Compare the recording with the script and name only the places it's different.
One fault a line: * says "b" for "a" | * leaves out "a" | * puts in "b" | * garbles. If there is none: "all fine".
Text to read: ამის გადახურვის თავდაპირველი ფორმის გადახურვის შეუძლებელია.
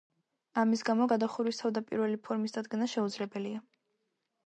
* puts in "გამო"
* says "დადგენა" for "გადახურვის"